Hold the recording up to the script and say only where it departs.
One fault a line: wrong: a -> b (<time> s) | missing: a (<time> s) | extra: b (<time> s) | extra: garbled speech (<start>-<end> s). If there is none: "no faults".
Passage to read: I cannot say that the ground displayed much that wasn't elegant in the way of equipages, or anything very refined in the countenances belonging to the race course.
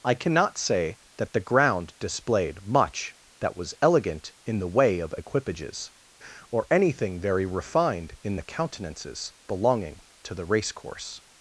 wrong: wasn't -> was (3.5 s)